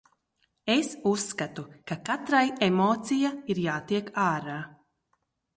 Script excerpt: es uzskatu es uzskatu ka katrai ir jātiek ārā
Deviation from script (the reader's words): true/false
true